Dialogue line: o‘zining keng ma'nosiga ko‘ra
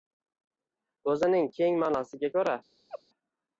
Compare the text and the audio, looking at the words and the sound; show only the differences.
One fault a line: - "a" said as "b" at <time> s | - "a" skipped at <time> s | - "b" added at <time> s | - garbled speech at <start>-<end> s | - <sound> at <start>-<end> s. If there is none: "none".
- laugh at 2.9-3.0 s